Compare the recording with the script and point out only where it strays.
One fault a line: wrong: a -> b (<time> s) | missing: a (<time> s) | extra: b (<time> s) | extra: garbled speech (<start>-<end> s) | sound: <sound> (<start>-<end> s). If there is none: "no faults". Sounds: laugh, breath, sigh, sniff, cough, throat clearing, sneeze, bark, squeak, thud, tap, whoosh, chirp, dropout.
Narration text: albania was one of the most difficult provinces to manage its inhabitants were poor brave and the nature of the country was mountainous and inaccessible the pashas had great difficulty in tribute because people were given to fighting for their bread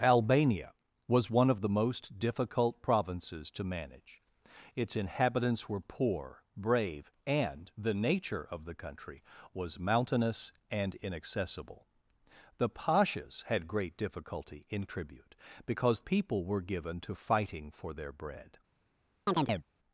sound: chirp (19.3-19.6 s)